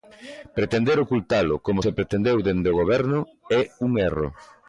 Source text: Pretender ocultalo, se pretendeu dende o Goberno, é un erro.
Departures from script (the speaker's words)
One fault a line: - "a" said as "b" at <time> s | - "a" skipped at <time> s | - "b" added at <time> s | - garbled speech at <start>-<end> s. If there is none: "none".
- "como" added at 1.7 s